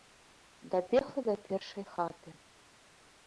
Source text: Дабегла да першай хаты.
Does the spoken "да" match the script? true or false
true